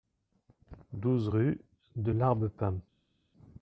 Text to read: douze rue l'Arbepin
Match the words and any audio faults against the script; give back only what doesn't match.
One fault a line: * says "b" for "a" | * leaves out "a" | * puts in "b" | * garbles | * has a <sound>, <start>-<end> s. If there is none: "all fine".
* puts in "de"